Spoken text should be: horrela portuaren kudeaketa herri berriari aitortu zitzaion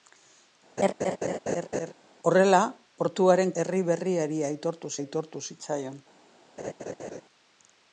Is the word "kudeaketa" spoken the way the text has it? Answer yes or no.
no